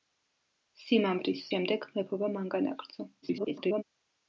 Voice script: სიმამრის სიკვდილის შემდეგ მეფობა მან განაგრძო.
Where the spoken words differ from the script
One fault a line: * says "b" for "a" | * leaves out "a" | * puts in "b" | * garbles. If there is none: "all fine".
* leaves out "სიკვდილის"
* garbles